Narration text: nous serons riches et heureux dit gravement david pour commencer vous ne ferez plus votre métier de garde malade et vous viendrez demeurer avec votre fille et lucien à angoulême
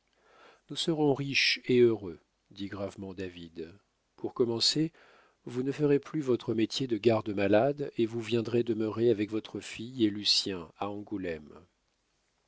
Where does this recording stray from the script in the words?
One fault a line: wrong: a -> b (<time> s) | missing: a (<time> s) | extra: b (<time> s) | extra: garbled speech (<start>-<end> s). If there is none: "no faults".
no faults